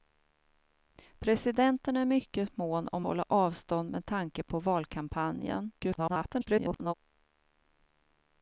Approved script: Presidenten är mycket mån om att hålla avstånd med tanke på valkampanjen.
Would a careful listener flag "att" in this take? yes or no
yes